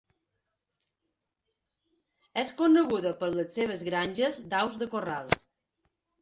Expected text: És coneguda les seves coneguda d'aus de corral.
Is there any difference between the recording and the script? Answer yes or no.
yes